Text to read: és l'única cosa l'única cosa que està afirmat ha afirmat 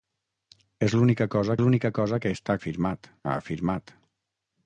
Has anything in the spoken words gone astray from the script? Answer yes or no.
no